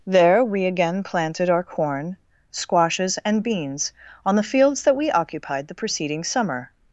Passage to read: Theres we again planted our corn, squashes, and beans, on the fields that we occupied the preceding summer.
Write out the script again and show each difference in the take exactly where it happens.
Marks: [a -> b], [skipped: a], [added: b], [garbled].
[Theres -> There] we again planted our corn, squashes, and beans, on the fields that we occupied the preceding summer.